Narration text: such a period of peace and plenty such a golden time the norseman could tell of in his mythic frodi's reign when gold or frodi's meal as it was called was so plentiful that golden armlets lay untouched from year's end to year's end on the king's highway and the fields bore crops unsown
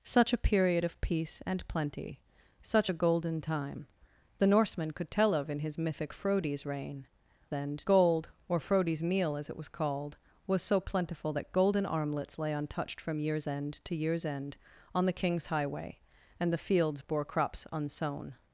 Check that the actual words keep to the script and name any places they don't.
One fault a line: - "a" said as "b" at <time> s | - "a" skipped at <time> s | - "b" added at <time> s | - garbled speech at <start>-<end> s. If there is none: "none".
- "when" said as "end" at 7.5 s